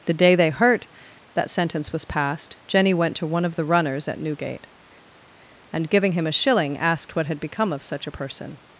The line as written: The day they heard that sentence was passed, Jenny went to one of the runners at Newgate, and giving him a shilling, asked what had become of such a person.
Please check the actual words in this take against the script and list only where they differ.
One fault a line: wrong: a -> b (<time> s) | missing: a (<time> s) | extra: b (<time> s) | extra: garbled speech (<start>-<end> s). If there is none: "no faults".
wrong: heard -> hurt (0.5 s)